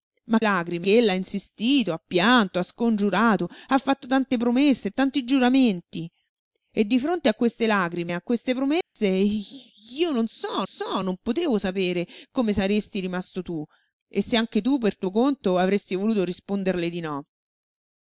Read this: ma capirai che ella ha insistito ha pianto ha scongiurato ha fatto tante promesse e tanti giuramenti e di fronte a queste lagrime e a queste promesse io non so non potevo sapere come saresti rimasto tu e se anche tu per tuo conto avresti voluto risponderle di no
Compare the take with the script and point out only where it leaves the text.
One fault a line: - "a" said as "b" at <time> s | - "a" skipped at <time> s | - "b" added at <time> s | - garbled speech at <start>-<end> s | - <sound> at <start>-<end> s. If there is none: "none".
- "capirai" said as "lagrime" at 0.4 s
- dropout at 8.8-9.0 s
- "so" added at 10.6 s